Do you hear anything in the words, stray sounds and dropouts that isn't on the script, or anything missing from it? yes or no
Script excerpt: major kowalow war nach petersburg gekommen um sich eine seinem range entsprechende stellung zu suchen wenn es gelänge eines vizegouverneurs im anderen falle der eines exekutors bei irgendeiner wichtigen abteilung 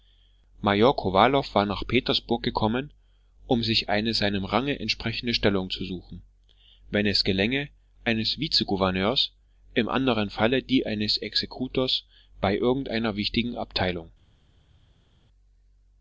yes